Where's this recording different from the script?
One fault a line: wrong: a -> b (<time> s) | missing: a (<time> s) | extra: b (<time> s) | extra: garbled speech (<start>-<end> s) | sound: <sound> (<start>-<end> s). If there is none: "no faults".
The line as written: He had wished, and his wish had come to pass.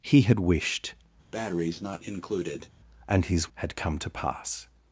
sound: breath (1.3-2.7 s)
missing: wish (3.5 s)